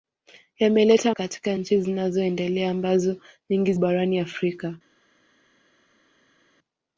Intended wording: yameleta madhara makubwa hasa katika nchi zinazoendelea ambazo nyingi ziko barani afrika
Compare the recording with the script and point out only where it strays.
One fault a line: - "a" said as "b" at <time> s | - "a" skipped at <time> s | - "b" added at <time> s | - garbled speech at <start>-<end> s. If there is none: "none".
- "madhara makubwa hasa" skipped at 1.1 s
- "ziko" skipped at 3.7 s